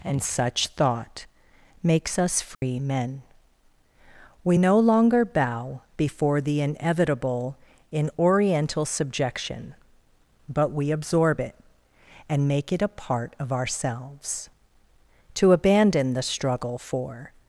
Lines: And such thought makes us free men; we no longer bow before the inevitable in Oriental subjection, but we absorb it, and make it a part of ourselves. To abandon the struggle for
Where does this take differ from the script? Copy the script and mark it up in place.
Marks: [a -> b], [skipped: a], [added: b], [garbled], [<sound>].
And such thought makes us free [dropout] men; we no longer bow before the inevitable in Oriental subjection, but we absorb it, and make it a part of ourselves. To abandon the struggle for